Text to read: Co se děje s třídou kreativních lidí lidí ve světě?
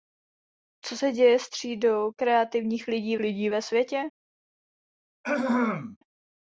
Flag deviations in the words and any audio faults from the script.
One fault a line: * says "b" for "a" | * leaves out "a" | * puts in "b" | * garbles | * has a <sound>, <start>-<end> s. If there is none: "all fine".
* has a throat clearing, 5.2-6.0 s